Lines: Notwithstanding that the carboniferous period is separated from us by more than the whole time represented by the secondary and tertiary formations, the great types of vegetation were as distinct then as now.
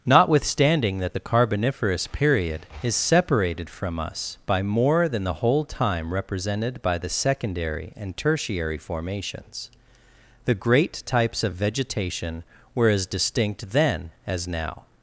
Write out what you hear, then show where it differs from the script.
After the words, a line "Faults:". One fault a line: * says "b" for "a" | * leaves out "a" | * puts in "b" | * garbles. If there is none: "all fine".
Notwithstanding that the carboniferous period is separated from us by more than the whole time represented by the secondary and tertiary formations, the great types of vegetation were as distinct then as now.
Faults:
all fine